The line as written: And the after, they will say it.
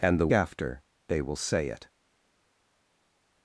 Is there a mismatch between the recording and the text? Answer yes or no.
no